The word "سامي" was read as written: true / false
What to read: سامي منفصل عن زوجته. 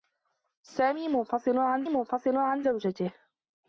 true